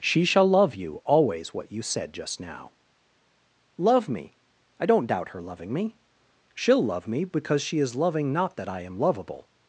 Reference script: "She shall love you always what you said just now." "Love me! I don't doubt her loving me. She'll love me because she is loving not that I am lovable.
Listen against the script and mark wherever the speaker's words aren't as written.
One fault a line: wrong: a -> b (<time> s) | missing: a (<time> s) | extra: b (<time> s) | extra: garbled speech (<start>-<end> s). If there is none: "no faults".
no faults